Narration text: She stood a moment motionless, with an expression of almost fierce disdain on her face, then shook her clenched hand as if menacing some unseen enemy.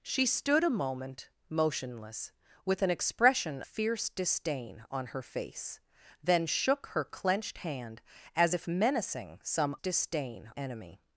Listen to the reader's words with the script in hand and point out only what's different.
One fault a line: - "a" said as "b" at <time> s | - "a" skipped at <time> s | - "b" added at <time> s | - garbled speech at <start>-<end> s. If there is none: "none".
- "of almost" skipped at 3.6 s
- "unseen" said as "disdain" at 9.7 s